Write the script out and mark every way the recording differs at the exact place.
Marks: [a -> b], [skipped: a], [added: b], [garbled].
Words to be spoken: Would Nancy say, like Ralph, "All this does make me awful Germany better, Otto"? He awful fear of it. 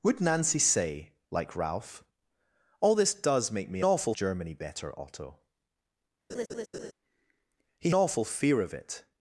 Would Nancy say, like Ralph, "All this does make me awful Germany better, Otto"? He awful fear of it.